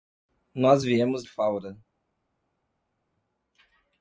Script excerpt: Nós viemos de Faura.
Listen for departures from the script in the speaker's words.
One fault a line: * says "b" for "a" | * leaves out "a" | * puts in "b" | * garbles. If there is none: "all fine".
* leaves out "de"